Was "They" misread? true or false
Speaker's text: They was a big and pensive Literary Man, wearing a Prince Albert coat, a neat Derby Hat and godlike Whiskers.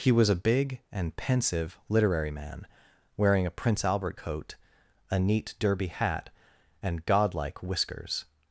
true